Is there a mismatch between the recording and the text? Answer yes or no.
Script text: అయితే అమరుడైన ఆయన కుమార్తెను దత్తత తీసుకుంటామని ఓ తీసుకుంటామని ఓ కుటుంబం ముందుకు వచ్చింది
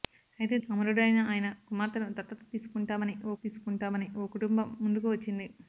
no